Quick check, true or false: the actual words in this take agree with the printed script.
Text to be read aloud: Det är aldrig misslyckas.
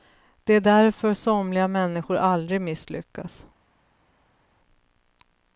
false